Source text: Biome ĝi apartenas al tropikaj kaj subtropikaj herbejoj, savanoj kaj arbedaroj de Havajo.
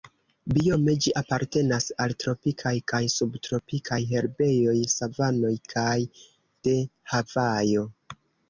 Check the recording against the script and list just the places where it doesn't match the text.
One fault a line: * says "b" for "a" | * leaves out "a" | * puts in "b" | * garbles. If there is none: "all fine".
* leaves out "arbedaroj"